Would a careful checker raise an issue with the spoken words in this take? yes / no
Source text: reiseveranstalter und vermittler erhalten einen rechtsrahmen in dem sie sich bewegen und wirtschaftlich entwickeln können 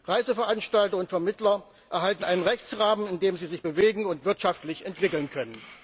no